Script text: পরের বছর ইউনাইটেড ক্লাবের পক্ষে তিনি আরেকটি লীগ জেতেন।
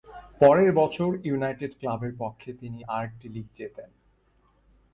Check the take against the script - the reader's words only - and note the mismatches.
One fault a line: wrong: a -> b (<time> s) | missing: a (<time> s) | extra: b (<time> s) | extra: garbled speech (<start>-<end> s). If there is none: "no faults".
no faults